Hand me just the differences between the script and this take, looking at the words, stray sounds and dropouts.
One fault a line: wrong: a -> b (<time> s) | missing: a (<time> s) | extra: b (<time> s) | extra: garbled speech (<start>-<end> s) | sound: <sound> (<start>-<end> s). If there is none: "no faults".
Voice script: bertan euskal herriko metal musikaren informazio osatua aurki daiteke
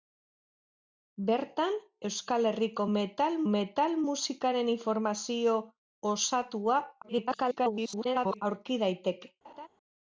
extra: metal (3.5 s)
extra: garbled speech (7.0-8.4 s)
sound: laugh (9.4-9.7 s)